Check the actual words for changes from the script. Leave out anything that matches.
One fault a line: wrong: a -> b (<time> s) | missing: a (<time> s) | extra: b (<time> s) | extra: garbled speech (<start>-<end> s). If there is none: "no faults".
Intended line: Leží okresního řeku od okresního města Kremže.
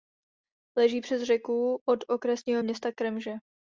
wrong: okresního -> přes (1.0 s)